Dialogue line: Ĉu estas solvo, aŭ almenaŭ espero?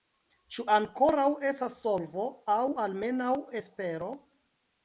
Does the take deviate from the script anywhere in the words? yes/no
yes